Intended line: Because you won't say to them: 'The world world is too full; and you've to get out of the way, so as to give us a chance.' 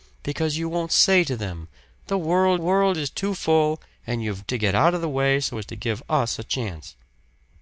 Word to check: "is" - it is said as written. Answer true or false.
true